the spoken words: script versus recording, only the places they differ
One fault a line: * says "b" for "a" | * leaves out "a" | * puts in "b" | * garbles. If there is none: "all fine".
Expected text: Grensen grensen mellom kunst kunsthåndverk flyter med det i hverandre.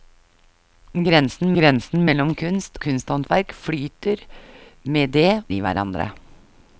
all fine